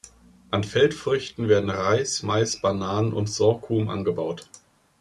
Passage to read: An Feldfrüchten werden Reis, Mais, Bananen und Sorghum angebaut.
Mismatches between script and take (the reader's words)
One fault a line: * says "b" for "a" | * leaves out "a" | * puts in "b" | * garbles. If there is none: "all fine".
all fine